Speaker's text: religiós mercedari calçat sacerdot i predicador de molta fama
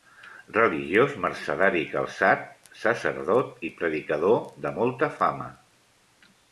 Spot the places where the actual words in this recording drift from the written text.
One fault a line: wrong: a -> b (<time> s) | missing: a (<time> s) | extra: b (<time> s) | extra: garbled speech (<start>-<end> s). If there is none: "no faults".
no faults